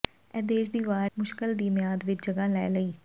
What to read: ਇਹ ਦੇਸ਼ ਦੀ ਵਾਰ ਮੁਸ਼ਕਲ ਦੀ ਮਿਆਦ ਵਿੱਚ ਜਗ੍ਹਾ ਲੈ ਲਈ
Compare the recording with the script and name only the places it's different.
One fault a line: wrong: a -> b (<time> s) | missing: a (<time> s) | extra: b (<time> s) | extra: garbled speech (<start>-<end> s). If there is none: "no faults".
no faults